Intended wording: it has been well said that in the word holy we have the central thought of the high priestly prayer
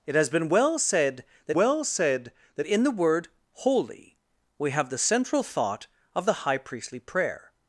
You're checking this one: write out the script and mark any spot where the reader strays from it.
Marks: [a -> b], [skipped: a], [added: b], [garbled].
it has been well said that [added: well said that] in the word holy we have the central thought of the high priestly prayer